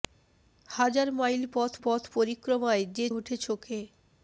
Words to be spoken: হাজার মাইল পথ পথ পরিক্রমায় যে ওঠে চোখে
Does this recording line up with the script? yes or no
yes